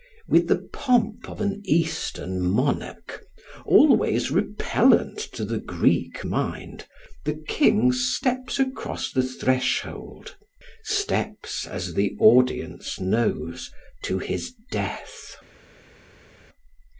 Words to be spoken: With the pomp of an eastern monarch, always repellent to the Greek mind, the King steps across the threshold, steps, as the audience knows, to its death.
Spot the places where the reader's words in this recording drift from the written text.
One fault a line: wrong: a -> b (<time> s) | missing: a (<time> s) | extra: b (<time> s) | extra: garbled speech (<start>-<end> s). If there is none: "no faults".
wrong: its -> his (14.2 s)